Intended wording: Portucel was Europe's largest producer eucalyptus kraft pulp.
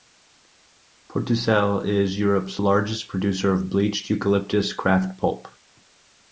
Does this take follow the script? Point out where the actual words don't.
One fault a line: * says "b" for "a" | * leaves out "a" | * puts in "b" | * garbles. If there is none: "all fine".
* says "is" for "was"
* puts in "of bleached"